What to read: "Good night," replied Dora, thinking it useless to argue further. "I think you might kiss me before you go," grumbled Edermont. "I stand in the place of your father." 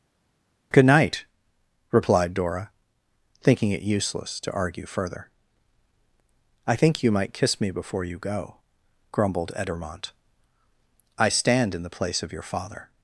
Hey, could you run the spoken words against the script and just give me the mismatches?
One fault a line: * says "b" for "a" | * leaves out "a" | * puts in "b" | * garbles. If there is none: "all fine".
all fine